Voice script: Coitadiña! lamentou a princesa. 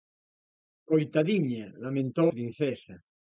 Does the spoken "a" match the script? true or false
false